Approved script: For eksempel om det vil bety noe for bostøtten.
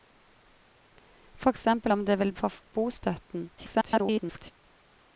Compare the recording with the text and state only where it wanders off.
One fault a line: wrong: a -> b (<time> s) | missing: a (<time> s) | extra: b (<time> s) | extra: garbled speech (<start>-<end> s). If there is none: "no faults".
missing: bety noe (2.3 s)
extra: garbled speech (3.6-4.5 s)